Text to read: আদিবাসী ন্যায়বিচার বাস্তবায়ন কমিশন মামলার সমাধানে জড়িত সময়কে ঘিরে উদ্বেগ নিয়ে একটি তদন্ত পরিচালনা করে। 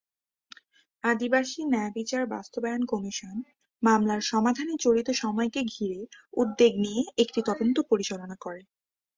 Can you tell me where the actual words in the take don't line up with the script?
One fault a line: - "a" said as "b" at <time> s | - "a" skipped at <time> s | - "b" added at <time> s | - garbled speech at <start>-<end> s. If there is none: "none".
none